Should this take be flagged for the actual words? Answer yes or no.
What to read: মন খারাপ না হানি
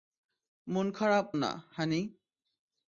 no